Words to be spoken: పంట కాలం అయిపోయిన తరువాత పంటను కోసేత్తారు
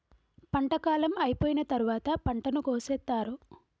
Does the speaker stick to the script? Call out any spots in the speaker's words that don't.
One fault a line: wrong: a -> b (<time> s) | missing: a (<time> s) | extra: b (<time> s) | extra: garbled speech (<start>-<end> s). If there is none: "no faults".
no faults